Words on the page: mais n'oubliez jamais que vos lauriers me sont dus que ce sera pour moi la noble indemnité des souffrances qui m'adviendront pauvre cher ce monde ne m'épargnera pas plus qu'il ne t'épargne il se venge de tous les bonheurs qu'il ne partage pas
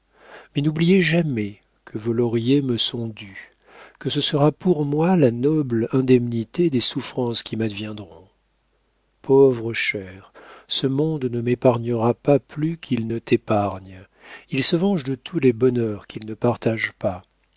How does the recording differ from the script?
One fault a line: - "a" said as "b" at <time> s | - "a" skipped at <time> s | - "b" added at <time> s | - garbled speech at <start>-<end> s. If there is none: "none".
none